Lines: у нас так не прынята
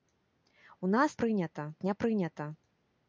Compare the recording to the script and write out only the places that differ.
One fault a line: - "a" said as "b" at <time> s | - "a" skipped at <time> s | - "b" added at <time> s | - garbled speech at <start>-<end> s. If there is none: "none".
- "так" said as "прынята" at 1.1 s